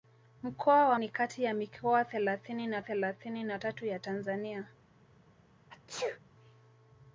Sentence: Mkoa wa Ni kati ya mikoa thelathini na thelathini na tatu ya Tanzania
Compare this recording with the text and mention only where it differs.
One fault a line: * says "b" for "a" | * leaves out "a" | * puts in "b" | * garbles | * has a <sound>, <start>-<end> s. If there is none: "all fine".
* has a sneeze, 5.7-6.2 s